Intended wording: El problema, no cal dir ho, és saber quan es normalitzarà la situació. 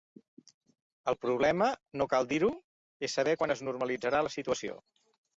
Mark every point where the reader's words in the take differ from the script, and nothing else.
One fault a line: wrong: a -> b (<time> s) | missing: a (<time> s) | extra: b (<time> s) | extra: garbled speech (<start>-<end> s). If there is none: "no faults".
no faults